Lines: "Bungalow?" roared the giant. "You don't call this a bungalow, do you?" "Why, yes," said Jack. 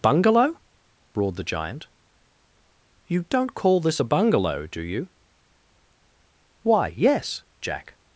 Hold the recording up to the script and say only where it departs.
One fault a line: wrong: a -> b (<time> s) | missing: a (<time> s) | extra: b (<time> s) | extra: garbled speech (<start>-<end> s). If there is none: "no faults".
missing: said (7.4 s)